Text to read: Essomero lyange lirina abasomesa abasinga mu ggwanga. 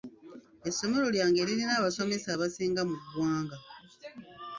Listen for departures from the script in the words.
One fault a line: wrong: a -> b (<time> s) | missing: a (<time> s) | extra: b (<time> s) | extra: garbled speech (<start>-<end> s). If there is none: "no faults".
no faults